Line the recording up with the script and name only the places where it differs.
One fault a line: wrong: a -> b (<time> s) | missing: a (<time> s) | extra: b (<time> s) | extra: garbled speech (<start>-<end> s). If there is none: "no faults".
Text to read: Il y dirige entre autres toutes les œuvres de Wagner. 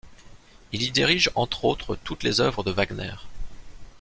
no faults